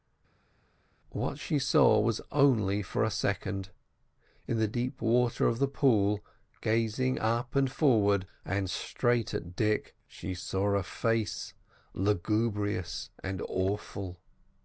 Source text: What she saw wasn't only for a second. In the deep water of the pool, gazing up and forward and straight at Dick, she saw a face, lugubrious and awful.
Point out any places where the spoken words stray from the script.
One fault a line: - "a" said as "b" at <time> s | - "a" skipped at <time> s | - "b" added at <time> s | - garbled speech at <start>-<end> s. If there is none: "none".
- "wasn't" said as "was" at 2.0 s